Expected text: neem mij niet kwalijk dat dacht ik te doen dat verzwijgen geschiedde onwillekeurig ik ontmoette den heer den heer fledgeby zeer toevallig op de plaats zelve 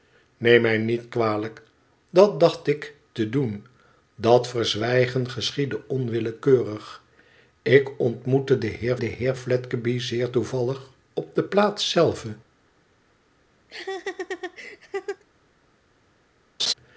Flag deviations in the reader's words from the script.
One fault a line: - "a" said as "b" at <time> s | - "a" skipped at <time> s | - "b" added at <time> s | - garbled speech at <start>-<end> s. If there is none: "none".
none